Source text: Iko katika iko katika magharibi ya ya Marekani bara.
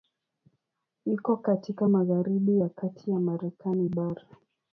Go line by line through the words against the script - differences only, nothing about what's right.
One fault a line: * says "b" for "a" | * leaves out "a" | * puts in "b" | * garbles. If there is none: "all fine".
* leaves out "iko katika"
* puts in "kati"